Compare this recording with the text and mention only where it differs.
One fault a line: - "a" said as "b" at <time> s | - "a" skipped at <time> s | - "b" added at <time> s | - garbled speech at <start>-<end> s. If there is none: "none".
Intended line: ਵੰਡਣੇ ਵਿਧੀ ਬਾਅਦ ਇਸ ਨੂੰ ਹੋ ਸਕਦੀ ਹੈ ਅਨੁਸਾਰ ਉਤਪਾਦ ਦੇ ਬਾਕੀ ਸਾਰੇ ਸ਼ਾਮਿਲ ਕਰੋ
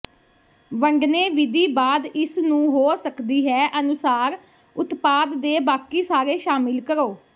none